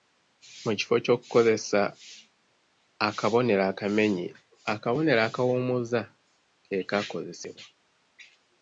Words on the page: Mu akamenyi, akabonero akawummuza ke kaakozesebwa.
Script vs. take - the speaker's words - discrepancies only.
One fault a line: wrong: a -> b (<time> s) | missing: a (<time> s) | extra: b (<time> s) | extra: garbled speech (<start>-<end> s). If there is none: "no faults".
extra: kifo ky'okukozesa akabonero (0.8 s)